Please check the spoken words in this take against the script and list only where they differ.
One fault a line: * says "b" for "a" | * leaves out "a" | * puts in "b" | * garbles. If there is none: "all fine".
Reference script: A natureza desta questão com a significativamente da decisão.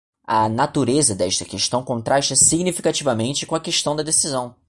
* puts in "contrasta significativamente"
* says "questão" for "significativamente"